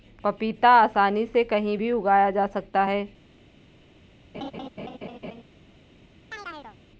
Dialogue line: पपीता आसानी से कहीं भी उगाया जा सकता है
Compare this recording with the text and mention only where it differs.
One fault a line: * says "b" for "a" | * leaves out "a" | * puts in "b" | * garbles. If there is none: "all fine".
all fine